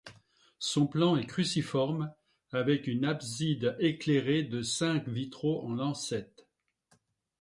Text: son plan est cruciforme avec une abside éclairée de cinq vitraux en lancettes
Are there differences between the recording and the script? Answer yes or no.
no